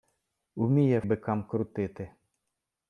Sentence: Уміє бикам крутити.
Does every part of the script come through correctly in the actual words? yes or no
yes